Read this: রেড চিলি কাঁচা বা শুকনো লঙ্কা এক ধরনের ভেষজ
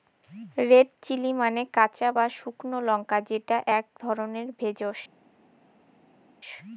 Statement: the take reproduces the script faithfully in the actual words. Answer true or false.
false